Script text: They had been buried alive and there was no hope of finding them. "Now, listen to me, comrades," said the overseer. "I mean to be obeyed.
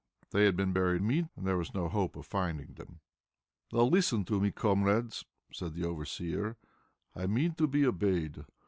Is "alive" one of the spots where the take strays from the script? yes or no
yes